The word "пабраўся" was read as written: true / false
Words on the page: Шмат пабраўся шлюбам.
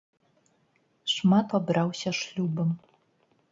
true